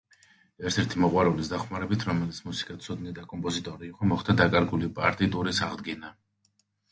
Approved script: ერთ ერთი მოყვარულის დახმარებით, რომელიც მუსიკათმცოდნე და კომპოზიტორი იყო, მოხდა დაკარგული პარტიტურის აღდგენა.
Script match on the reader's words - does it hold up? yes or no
yes